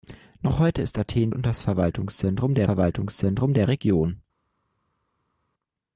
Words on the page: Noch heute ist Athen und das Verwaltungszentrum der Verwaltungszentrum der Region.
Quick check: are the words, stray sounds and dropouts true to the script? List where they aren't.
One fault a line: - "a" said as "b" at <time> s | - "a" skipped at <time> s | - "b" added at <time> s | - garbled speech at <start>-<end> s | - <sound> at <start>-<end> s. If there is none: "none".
none